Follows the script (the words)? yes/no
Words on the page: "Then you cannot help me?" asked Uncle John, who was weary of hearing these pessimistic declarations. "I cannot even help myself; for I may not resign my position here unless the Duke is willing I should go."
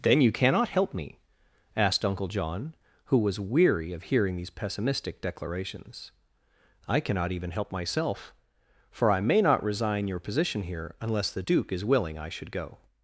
no